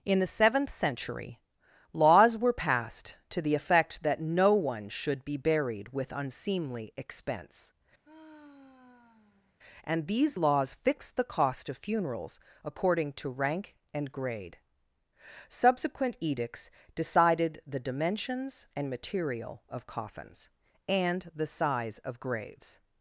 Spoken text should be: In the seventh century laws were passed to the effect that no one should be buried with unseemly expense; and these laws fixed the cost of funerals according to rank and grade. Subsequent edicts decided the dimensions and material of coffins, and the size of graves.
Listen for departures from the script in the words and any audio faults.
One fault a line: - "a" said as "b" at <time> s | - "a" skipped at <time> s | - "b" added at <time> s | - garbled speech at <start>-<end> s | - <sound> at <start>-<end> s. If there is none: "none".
- sigh at 8.0-9.6 s